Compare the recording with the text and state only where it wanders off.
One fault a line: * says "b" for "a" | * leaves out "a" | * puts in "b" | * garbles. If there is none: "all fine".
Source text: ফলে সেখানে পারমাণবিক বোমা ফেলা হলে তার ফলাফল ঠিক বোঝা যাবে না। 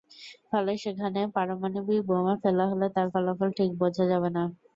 all fine